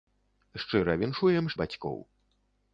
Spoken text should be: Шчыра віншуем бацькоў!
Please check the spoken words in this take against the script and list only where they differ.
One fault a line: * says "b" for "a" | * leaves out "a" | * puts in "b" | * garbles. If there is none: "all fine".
all fine